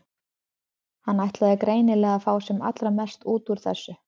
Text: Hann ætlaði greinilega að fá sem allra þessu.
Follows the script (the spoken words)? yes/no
no